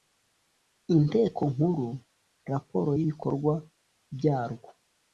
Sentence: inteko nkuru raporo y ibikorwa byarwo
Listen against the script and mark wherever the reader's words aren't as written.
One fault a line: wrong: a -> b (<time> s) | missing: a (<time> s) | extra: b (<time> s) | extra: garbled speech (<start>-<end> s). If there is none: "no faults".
no faults